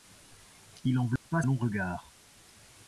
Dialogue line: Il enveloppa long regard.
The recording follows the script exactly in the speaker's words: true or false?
true